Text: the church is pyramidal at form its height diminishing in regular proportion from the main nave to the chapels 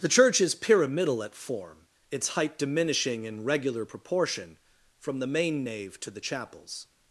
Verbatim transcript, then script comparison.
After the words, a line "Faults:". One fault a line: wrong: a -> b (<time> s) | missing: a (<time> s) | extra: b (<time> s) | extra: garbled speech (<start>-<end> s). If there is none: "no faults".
the church is pyramidal at form its height diminishing in regular proportion from the main nave to the chapels
Faults:
no faults